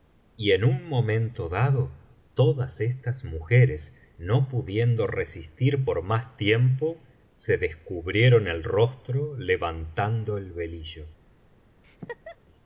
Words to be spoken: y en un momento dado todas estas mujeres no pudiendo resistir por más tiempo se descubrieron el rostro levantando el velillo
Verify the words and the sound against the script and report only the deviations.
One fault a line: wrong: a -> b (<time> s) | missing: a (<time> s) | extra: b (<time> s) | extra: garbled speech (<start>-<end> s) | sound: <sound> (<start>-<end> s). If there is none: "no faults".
sound: laugh (11.8-12.4 s)